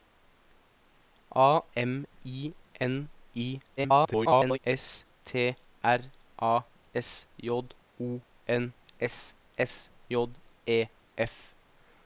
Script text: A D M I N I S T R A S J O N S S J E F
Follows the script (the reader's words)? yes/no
no